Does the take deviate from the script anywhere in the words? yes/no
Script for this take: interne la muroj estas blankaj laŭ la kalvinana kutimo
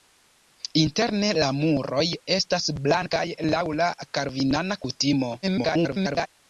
yes